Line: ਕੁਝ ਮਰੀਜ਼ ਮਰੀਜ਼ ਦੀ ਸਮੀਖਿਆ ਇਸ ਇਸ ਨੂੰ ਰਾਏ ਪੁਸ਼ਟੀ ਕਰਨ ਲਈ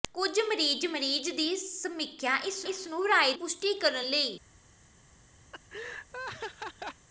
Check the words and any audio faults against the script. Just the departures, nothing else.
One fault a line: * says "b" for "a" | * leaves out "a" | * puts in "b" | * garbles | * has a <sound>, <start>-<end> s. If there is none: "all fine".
* has a laugh, 5.5-7.1 s